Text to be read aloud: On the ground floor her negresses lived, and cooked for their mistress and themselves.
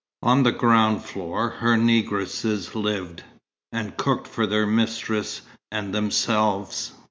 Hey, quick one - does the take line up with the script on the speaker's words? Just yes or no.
yes